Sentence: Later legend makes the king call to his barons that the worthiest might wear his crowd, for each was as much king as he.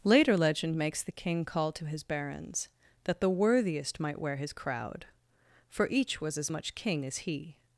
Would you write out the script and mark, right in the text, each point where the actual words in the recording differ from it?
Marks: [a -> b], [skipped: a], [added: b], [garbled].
Later legend makes the king call to his barons that the worthiest might wear his crowd, for each was as much king as he.